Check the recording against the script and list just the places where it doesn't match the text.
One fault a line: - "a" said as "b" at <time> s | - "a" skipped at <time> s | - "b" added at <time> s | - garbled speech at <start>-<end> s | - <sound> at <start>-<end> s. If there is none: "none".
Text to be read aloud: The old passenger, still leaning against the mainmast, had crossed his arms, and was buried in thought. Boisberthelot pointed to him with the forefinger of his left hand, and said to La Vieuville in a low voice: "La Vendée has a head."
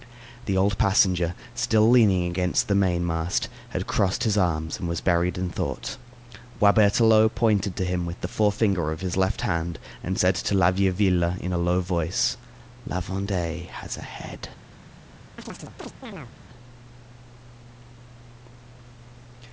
- chirp at 15.4-16.4 s